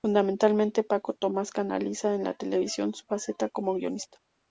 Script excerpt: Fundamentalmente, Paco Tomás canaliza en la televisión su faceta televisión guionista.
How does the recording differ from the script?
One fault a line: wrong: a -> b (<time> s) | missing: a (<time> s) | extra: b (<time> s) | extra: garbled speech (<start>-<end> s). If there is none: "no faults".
wrong: televisión -> como (3.5 s)